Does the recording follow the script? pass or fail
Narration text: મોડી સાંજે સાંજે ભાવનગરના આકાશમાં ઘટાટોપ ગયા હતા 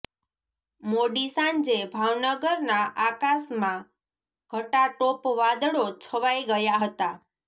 fail